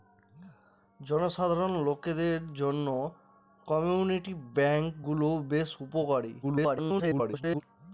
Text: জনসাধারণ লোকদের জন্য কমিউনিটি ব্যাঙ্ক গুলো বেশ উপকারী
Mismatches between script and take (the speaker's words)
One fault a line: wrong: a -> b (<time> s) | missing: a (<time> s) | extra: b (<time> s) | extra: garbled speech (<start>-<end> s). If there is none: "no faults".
extra: garbled speech (6.4-7.6 s)